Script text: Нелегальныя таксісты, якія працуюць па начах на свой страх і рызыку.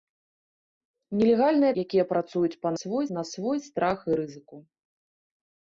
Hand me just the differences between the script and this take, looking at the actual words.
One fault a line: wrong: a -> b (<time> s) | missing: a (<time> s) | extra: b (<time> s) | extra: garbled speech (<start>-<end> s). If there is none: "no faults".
missing: таксісты (1.7 s)
wrong: начах -> свой (2.8 s)